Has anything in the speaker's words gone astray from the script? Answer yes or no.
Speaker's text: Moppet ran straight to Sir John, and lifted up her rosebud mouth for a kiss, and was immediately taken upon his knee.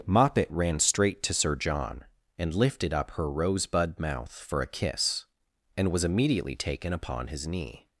no